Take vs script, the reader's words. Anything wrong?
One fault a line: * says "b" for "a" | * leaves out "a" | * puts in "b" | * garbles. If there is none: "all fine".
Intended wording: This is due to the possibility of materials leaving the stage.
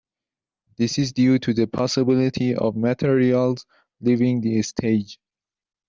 all fine